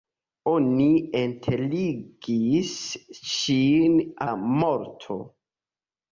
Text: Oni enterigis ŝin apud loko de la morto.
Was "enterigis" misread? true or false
false